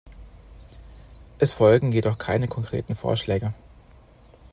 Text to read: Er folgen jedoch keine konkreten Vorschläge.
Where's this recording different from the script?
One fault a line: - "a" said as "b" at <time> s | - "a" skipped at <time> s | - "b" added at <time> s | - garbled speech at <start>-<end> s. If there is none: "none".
- "Er" said as "Es" at 1.4 s